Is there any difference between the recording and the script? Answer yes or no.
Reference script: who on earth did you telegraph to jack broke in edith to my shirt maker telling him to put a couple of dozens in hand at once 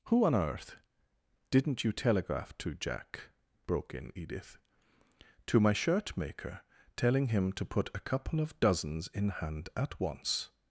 yes